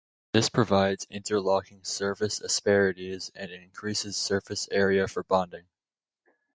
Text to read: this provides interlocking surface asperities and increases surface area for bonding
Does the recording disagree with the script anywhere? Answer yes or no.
no